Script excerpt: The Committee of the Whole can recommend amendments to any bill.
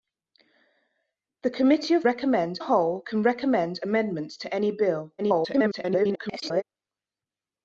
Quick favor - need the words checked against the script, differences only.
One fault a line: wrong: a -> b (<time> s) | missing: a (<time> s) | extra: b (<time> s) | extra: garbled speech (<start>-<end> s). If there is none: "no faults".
wrong: the -> recommend (2.0 s)
extra: garbled speech (5.2-6.6 s)